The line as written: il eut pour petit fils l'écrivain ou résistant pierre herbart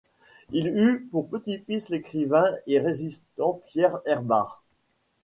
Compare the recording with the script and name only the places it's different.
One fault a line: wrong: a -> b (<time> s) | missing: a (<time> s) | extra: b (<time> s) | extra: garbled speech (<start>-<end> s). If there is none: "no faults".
wrong: ou -> et (2.7 s)